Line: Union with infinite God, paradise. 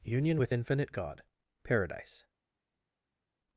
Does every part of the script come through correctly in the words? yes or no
yes